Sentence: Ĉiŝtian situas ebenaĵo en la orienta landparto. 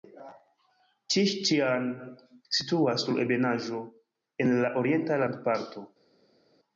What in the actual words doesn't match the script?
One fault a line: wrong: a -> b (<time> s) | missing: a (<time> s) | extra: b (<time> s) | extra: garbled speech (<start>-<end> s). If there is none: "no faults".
extra: sur (3.1 s)